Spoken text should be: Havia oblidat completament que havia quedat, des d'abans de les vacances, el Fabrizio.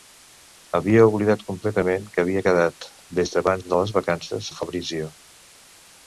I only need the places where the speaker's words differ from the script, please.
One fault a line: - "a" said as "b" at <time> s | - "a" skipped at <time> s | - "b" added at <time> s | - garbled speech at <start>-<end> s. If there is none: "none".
none